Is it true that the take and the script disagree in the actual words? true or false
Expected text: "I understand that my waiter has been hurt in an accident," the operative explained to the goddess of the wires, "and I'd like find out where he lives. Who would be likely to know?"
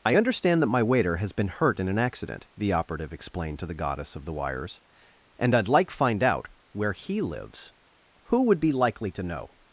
false